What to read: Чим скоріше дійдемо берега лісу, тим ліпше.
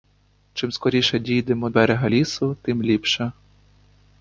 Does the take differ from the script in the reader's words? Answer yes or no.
no